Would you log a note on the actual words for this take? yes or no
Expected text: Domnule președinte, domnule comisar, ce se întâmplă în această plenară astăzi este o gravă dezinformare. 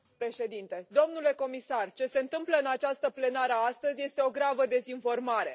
no